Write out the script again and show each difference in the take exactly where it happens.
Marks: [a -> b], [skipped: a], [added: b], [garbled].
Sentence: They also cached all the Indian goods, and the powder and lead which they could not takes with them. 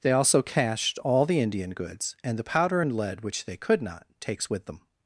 They also cached all the Indian goods, and the powder and lead which they could not takes with them.